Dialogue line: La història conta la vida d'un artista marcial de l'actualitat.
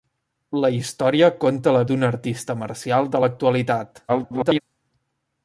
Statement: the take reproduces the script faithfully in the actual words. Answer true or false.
false